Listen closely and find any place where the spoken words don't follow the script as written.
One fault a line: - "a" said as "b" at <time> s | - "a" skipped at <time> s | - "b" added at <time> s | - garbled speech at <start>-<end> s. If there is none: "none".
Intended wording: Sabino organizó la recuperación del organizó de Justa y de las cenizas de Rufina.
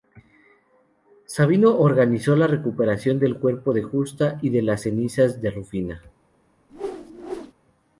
- "organizó" said as "cuerpo" at 3.4 s